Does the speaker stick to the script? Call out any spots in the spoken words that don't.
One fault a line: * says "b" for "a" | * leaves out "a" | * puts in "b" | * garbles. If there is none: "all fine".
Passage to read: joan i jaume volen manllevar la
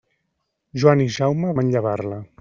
* leaves out "volen"